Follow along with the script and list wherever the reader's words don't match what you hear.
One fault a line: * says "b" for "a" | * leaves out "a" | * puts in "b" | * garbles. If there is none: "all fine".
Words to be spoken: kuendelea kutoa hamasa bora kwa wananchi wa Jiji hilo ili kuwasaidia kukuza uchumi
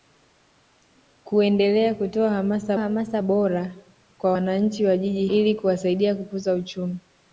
* puts in "hamasa"
* leaves out "hilo"